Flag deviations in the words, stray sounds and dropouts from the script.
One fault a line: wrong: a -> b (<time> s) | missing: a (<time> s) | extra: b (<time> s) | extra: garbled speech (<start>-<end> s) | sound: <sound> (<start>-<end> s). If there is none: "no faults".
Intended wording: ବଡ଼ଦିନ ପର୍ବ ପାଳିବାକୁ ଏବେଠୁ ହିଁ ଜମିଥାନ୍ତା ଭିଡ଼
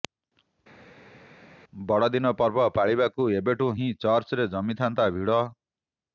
extra: ଚର୍ଚ୍ଚରେ (4.0 s)